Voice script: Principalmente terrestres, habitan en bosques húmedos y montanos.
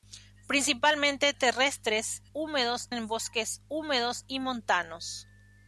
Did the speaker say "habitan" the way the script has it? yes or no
no